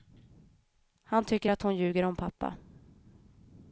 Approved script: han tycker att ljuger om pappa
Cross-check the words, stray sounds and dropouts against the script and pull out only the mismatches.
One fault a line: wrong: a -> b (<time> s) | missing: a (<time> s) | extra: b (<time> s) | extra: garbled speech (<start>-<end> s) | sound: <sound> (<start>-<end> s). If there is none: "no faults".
extra: hon (1.6 s)